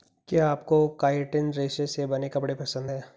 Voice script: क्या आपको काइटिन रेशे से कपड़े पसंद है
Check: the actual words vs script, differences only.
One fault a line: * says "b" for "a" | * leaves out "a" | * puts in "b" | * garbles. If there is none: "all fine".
* puts in "बने"